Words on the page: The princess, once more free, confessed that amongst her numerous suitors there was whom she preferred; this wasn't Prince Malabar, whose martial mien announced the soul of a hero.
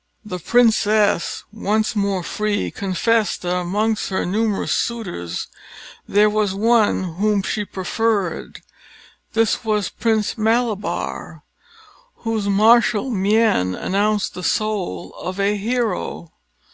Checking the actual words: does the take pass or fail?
fail